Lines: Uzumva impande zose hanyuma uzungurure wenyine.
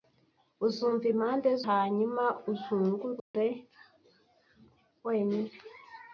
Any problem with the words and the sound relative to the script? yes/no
yes